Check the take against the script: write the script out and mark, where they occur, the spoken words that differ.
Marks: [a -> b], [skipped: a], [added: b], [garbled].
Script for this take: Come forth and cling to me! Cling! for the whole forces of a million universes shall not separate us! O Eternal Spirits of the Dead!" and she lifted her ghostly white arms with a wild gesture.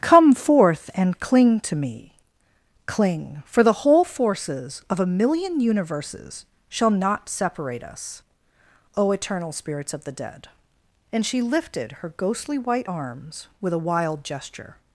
Come forth and cling to me! Cling! for the whole forces of a million universes shall not separate us! O Eternal Spirits of the Dead!" and she lifted her ghostly white arms with a wild gesture.